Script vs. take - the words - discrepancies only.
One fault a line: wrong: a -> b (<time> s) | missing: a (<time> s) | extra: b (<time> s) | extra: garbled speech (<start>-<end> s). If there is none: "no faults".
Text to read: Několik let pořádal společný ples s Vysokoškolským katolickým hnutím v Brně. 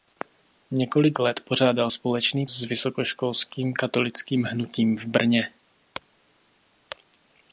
missing: ples (2.5 s)